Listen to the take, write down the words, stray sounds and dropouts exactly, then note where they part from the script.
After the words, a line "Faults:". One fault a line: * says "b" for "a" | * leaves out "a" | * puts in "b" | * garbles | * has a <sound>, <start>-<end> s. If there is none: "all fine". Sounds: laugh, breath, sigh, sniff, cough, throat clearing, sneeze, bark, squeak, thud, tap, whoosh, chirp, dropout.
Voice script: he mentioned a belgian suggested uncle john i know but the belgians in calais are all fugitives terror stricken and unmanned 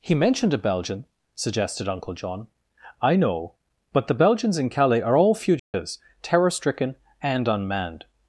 he mentioned a belgian suggested uncle john i know but the belgians in calais are all fugitives terror stricken and unmanned
Faults:
* has a dropout, 5.6-5.7 s